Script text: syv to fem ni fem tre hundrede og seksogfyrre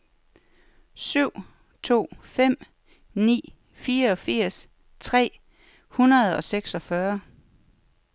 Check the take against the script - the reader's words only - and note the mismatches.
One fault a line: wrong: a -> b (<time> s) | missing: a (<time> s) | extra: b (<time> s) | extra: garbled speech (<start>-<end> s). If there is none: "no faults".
wrong: fem -> fireogfirs (3.7 s)